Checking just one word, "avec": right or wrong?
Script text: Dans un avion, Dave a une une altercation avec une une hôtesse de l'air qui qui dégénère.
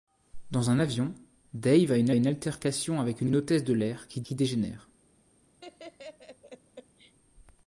right